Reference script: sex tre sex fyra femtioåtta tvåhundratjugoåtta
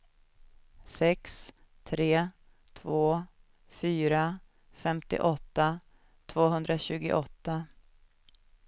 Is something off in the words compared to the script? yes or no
yes